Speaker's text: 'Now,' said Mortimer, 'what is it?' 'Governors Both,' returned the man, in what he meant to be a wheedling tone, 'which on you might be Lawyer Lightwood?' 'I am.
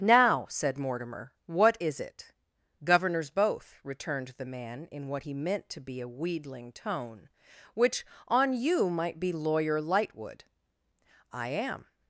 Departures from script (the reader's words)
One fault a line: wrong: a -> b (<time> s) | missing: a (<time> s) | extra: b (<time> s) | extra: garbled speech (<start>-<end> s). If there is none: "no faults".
no faults